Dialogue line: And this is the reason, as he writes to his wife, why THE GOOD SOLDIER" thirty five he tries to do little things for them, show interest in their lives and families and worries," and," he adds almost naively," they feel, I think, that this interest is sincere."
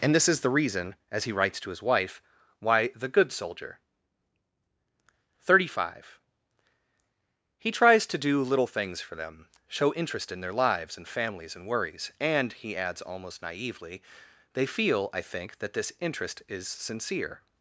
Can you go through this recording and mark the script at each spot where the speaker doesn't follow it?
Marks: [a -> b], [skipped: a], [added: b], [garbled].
And this is the reason, as he writes to his wife, why THE GOOD SOLDIER" thirty five he tries to do little things for them, show interest in their lives and families and worries," and," he adds almost naively," they feel, I think, that this interest is sincere."